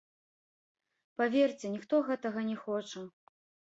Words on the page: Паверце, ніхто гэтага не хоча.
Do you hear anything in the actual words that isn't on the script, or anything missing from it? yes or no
no